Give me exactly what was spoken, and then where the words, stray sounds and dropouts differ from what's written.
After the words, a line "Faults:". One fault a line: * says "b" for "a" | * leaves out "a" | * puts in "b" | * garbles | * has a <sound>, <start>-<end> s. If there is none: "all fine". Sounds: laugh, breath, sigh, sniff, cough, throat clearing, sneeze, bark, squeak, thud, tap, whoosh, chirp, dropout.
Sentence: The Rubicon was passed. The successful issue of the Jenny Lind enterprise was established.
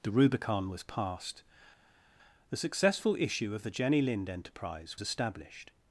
The Rubicon was passed. The successful issue of the Jenny Lind enterprise established.
Faults:
* leaves out "was"